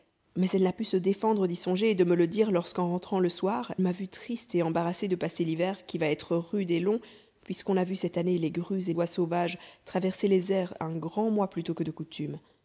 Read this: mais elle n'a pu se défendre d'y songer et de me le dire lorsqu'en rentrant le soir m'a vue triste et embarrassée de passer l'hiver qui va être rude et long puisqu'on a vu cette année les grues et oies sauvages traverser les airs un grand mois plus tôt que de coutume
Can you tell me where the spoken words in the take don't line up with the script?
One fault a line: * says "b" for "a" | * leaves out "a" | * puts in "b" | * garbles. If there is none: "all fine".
all fine